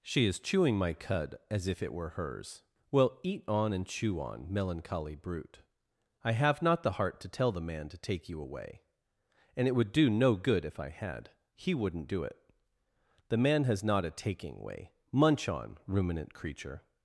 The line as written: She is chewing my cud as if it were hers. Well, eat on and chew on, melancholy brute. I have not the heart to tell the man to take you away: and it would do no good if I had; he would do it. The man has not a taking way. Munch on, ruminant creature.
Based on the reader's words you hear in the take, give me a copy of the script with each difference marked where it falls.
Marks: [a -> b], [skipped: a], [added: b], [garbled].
She is chewing my cud as if it were hers. Well, eat on and chew on, melancholy brute. I have not the heart to tell the man to take you away: and it would do no good if I had; he [would -> wouldn't] do it. The man has not a taking way. Munch on, ruminant creature.